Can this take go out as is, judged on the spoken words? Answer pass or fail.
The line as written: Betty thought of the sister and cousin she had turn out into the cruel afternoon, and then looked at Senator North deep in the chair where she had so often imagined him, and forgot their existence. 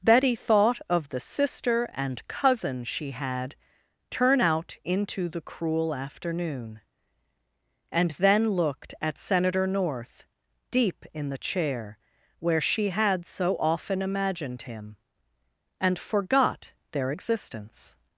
pass